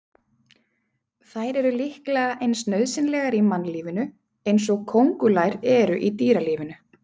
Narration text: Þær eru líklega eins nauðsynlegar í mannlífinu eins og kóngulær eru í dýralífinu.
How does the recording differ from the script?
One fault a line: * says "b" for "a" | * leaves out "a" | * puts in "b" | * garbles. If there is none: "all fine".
all fine